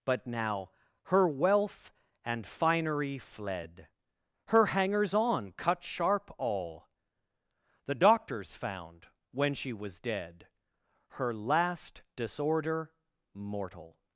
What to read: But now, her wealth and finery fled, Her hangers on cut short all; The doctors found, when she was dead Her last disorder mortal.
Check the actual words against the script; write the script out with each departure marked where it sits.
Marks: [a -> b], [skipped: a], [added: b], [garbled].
But now, her wealth and finery fled, Her hangers on cut [short -> sharp] all; The doctors found, when she was dead Her last disorder mortal.